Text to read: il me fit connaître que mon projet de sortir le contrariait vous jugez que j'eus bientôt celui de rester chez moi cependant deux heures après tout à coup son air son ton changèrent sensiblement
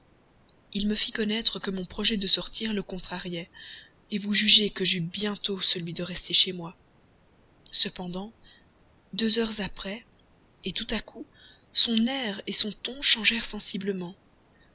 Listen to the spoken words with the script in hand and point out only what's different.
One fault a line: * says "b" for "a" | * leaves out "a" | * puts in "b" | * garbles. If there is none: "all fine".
all fine